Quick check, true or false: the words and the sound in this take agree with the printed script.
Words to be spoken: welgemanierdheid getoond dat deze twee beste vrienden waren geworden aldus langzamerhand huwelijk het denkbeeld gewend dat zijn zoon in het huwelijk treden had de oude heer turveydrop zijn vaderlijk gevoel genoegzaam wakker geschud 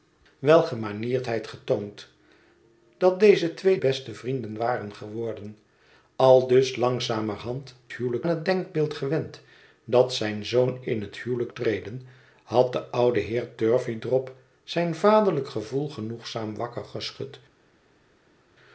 true